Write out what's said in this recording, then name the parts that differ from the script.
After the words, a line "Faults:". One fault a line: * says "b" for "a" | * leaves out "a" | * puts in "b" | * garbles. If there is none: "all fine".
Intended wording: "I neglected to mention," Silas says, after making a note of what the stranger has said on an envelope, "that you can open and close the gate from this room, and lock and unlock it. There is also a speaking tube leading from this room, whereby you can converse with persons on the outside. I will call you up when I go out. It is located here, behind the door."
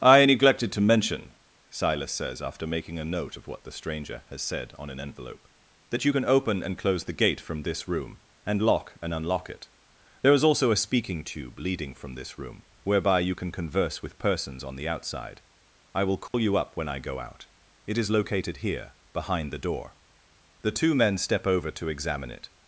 "I neglected to mention," Silas says, after making a note of what the stranger has said on an envelope, "that you can open and close the gate from this room, and lock and unlock it. There is also a speaking tube leading from this room, whereby you can converse with persons on the outside. I will call you up when I go out. It is located here, behind the door." The two men step over to examine it
Faults:
* puts in "The two men step over to examine it"